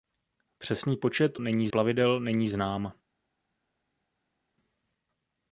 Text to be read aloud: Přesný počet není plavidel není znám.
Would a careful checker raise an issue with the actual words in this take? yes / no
no